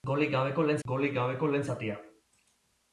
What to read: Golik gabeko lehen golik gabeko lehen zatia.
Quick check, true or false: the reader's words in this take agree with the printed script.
true